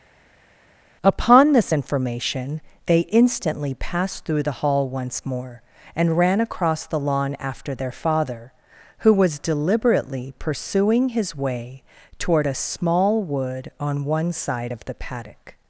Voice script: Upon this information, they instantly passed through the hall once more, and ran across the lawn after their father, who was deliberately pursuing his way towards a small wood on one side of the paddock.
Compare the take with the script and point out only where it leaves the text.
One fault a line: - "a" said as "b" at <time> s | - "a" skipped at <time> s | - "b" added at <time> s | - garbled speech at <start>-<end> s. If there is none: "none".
- "towards" said as "toward" at 12.2 s